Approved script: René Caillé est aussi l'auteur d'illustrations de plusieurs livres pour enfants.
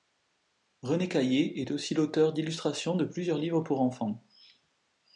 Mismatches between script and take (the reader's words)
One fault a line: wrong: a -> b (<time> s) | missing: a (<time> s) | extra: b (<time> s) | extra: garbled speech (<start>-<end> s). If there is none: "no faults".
no faults